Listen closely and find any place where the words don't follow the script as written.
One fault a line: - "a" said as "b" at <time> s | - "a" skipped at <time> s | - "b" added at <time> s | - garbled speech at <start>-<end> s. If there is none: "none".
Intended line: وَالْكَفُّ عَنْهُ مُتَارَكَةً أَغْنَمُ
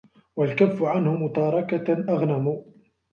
none